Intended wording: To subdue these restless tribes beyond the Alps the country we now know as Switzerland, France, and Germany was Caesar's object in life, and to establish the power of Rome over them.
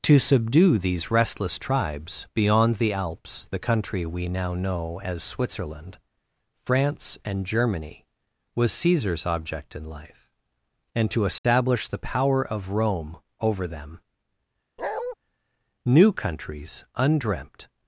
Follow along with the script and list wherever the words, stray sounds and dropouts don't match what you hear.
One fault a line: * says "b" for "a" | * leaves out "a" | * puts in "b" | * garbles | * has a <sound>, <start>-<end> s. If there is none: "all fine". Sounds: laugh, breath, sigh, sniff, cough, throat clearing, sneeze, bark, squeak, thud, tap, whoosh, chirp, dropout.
* has a dropout, 11.4-11.4 s
* has a bark, 14.8-15.2 s
* puts in "New countries undreamt"